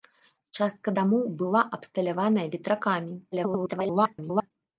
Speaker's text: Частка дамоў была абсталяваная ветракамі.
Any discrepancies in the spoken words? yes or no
yes